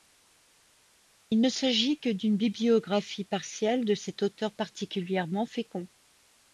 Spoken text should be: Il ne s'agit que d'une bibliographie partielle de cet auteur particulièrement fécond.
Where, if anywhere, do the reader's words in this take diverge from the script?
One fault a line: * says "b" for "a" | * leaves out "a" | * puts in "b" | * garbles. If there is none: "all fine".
all fine